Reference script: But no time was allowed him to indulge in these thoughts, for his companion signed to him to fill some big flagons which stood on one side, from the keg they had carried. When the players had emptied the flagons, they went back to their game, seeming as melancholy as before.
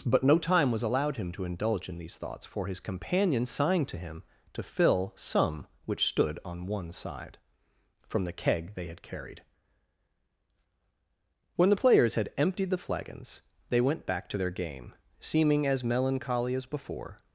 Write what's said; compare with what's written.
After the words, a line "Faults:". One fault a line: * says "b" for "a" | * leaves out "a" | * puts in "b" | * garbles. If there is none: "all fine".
But no time was allowed him to indulge in these thoughts, for his companion signed to him to fill some which stood on one side, from the keg they had carried. When the players had emptied the flagons, they went back to their game, seeming as melancholy as before.
Faults:
* leaves out "big flagons"